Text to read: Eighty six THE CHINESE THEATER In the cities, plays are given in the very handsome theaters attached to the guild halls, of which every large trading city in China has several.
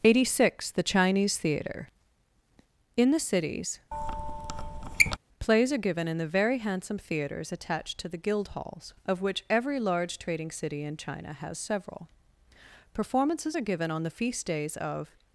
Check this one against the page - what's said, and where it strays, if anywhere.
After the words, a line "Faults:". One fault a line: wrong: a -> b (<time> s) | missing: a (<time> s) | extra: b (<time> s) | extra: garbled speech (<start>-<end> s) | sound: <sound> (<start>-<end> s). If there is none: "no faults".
Eighty six THE CHINESE THEATER In the cities, plays are given in the very handsome theaters attached to the guild halls, of which every large trading city in China has several. Performances are given on the feast days of
Faults:
sound: squeak (3.9-5.2 s)
extra: Performances are given on the feast days of (12.9 s)